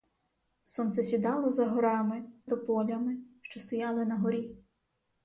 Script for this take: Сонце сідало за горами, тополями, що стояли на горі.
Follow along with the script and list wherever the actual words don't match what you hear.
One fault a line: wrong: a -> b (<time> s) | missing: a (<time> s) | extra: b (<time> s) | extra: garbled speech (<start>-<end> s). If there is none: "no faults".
no faults